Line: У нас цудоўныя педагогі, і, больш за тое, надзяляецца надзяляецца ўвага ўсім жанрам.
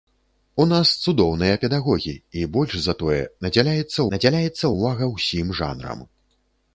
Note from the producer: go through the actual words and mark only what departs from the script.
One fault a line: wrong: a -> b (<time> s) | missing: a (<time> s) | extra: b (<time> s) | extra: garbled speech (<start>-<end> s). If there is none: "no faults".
no faults